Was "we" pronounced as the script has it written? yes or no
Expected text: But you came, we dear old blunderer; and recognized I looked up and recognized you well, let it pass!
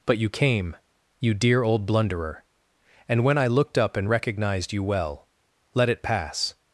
no